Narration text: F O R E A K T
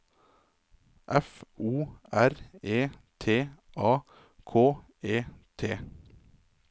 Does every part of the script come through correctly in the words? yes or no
no